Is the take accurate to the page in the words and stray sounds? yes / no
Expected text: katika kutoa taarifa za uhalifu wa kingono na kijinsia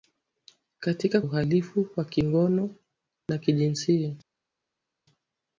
no